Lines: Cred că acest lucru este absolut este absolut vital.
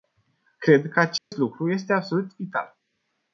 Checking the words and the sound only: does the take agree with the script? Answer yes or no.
no